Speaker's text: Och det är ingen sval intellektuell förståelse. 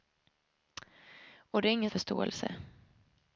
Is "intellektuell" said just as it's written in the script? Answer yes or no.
no